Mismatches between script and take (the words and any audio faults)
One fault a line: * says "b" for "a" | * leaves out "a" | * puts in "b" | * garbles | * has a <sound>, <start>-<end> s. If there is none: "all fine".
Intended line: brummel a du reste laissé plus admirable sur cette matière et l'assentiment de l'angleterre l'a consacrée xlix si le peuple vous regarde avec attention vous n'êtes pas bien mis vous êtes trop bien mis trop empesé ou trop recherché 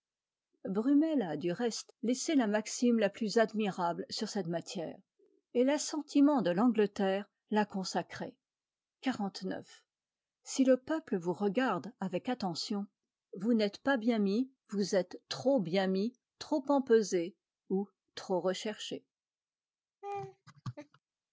* puts in "la maxime la"
* has a laugh, 20.0-21.0 s